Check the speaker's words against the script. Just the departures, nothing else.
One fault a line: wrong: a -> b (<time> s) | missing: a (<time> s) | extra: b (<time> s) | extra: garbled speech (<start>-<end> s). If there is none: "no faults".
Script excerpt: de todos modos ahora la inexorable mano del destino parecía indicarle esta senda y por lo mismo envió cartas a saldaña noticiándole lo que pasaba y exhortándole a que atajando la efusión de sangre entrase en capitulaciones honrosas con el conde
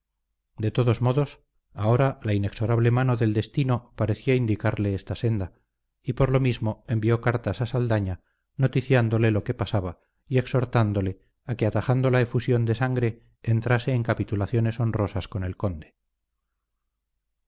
no faults